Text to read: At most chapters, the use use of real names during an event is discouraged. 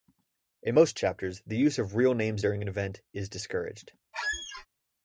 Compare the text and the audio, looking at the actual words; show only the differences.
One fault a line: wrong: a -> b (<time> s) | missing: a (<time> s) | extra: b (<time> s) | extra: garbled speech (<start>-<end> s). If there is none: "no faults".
wrong: At -> In (0.6 s)
missing: use (1.8 s)